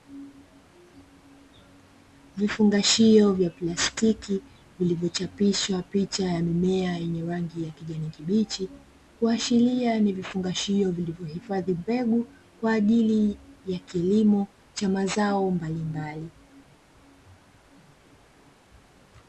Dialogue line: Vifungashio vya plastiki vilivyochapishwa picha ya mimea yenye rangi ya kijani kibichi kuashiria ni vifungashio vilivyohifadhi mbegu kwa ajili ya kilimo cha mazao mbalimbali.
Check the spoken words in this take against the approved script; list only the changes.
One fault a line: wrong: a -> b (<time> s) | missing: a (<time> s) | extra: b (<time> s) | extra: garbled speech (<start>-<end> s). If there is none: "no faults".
no faults